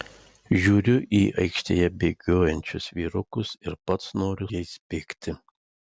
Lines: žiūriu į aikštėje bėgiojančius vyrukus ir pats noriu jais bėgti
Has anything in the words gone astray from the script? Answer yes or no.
no